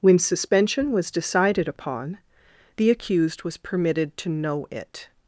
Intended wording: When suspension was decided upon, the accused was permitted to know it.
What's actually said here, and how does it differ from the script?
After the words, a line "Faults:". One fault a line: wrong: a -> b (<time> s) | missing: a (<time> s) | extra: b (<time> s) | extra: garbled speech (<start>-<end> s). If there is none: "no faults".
When suspension was decided upon, the accused was permitted to know it.
Faults:
no faults